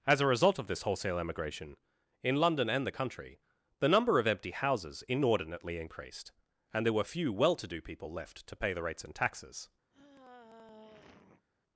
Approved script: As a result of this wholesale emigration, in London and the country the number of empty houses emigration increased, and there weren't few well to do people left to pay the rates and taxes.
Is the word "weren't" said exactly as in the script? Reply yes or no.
no